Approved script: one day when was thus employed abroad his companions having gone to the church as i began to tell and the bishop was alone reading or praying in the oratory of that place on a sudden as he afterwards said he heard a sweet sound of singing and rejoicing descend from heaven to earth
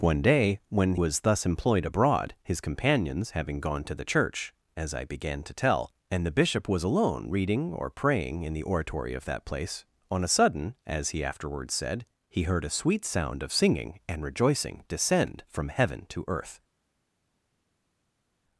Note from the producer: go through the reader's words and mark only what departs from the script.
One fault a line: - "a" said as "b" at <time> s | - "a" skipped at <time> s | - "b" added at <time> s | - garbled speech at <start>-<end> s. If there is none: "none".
none